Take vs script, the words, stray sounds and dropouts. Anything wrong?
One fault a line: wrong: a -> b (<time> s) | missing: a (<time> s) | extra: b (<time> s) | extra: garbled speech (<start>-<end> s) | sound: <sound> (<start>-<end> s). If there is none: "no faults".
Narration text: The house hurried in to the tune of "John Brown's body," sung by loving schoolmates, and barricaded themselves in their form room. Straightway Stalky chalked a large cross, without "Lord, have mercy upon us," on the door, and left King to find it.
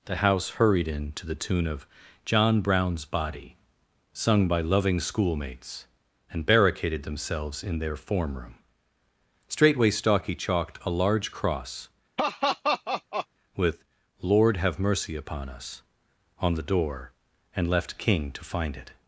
sound: laugh (12.2-13.3 s)
wrong: without -> with (13.5 s)